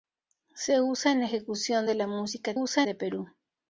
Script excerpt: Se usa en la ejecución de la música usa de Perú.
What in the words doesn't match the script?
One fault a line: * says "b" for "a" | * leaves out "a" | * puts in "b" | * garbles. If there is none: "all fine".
all fine